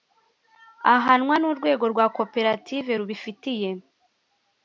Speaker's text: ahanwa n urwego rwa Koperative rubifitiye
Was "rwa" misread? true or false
false